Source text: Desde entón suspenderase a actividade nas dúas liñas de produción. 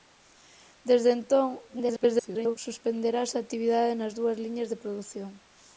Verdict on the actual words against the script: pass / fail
fail